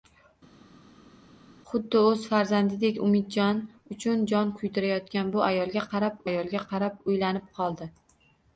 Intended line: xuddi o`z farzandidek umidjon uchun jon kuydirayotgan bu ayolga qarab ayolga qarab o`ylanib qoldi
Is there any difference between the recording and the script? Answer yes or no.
no